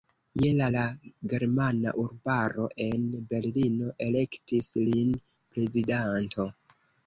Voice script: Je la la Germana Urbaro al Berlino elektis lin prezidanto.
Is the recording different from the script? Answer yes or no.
yes